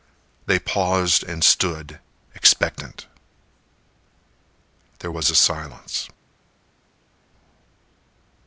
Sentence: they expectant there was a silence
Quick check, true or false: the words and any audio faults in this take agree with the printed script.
false